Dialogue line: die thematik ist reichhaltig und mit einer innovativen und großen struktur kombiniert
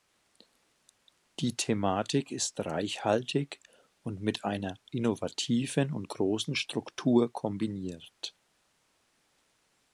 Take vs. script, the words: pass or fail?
pass